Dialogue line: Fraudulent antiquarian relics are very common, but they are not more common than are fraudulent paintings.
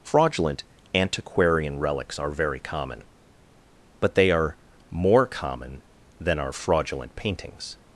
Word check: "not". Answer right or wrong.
wrong